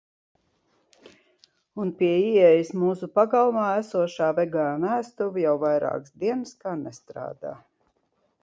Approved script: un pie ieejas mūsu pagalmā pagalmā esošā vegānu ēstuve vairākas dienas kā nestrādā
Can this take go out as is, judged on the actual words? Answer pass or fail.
fail